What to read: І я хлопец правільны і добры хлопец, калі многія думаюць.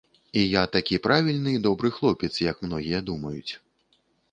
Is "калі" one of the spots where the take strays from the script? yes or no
yes